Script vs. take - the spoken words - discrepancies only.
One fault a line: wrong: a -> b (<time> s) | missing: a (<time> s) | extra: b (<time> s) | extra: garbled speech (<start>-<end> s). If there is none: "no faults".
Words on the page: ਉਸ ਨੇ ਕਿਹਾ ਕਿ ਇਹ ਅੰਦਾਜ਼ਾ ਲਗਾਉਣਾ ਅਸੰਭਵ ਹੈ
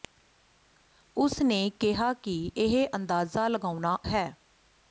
missing: ਅਸੰਭਵ (4.0 s)